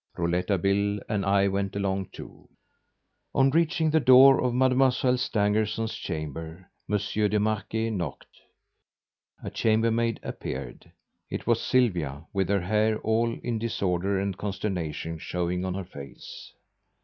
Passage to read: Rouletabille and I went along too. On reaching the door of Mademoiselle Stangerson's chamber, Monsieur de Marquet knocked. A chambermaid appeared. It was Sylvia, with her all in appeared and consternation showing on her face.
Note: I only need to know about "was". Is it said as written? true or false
true